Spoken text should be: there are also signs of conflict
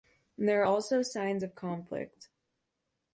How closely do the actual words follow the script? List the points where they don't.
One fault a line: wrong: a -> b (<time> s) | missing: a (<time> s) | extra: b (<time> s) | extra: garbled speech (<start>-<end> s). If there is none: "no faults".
no faults